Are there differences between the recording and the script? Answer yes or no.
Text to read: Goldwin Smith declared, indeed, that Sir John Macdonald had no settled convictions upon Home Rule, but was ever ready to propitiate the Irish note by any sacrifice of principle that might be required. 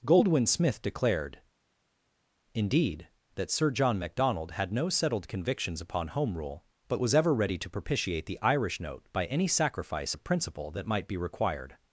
no